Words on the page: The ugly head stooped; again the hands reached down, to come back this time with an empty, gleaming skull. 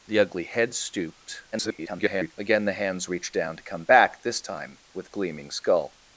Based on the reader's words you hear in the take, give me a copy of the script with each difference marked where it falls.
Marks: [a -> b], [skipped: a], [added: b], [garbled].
The ugly head stooped; [garbled] again the hands reached down, to come back this time with [skipped: an empty,] gleaming skull.